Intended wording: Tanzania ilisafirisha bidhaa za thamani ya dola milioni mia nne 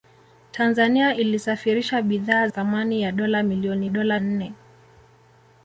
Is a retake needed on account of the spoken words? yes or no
yes